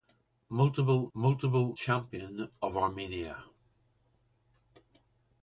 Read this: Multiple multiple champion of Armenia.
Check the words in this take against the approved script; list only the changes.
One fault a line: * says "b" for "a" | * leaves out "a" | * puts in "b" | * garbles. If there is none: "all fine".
all fine